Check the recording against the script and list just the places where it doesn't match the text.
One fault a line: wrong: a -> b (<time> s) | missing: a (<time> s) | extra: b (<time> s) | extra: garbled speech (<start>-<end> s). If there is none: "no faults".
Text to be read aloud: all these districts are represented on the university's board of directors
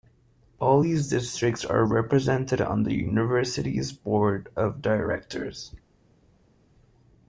no faults